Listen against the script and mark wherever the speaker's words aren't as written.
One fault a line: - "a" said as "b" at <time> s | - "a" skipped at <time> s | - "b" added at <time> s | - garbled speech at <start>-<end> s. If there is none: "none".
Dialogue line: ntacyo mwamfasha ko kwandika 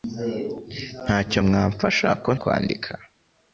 none